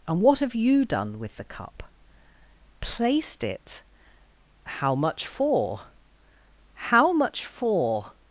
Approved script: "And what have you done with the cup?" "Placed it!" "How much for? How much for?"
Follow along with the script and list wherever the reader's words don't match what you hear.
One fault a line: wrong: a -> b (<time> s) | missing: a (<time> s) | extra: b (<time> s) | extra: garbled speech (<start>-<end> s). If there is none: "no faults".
no faults